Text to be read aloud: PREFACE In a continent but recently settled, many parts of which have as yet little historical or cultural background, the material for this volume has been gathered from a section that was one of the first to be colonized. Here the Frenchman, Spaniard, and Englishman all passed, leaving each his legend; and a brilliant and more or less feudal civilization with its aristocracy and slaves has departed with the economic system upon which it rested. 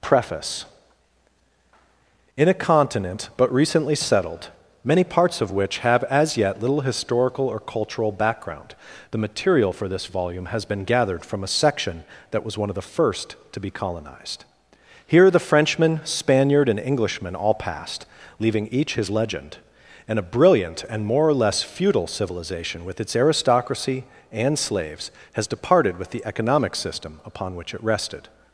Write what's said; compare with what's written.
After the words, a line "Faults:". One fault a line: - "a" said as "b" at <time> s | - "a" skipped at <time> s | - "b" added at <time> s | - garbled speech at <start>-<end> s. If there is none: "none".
PREFACE In a continent but recently settled, many parts of which have as yet little historical or cultural background, the material for this volume has been gathered from a section that was one of the first to be colonized. Here the Frenchman, Spaniard, and Englishman all passed, leaving each his legend; and a brilliant and more or less feudal civilization with its aristocracy and slaves has departed with the economic system upon which it rested.
Faults:
none